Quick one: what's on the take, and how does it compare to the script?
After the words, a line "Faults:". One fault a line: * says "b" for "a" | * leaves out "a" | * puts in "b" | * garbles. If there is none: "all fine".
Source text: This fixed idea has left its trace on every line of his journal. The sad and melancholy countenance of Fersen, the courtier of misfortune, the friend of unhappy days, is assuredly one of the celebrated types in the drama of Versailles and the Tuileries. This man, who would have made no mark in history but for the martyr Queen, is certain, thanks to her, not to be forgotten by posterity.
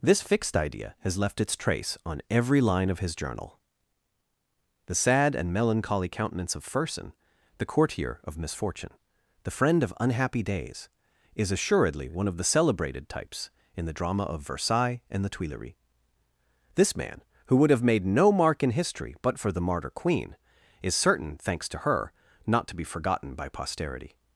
This fixed idea has left its trace on every line of his journal. The sad and melancholy countenance of Fersen, the courtier of misfortune, the friend of unhappy days, is assuredly one of the celebrated types in the drama of Versailles and the Tuileries. This man, who would have made no mark in history but for the martyr Queen, is certain, thanks to her, not to be forgotten by posterity.
Faults:
all fine